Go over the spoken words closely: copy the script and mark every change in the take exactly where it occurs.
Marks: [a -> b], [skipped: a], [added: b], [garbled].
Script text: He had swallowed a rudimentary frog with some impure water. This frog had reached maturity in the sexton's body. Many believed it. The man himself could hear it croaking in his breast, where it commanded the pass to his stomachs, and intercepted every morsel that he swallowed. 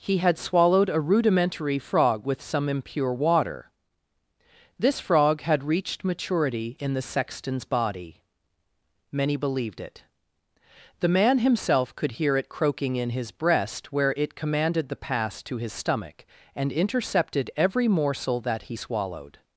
He had swallowed a rudimentary frog with some impure water. This frog had reached maturity in the sexton's body. Many believed it. The man himself could hear it croaking in his breast, where it commanded the pass to his [stomachs, -> stomach] and intercepted every morsel that he swallowed.